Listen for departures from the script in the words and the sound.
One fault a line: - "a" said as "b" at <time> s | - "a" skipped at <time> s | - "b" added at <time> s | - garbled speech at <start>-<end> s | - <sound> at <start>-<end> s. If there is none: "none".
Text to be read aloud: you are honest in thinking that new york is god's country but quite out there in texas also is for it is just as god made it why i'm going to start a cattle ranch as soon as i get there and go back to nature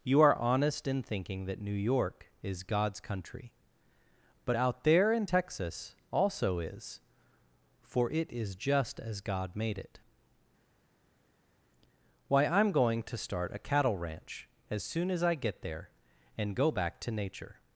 - "quite" skipped at 4.6 s